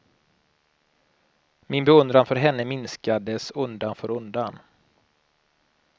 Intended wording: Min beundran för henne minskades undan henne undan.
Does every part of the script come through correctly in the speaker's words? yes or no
no